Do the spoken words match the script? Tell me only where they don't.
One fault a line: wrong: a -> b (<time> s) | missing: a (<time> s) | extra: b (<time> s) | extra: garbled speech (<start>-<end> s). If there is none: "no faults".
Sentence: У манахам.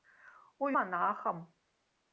no faults